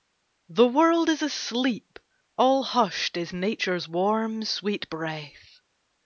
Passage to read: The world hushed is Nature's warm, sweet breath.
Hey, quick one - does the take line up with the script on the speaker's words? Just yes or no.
no